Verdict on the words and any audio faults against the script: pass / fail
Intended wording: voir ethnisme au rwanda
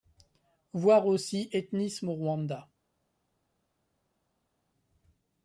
fail